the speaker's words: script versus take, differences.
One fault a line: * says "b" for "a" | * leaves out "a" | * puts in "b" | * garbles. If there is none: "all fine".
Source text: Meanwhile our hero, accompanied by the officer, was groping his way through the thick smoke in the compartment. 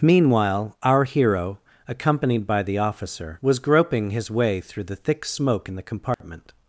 all fine